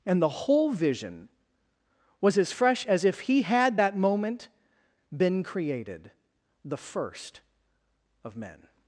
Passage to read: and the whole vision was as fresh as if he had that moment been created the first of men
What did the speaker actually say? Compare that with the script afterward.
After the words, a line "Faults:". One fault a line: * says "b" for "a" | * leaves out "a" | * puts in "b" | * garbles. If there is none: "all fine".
and the whole vision was as fresh as if he had that moment been created the first of men
Faults:
all fine